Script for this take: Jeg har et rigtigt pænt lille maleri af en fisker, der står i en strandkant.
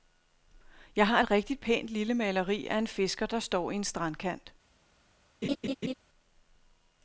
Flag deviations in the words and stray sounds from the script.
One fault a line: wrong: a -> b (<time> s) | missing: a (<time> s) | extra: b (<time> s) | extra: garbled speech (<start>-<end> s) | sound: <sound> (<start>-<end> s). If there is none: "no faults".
sound: laugh (5.4-5.9 s)